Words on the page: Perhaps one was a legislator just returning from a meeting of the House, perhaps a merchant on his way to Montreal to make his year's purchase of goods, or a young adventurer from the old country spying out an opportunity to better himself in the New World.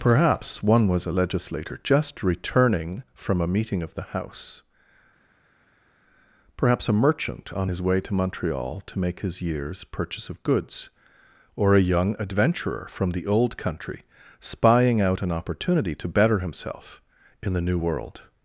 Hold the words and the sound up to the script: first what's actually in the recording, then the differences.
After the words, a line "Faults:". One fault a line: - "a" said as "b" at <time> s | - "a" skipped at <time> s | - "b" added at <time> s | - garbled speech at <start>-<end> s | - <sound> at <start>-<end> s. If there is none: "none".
Perhaps one was a legislator just returning from a meeting of the House, perhaps a merchant on his way to Montreal to make his year's purchase of goods, or a young adventurer from the old country spying out an opportunity to better himself in the New World.
Faults:
none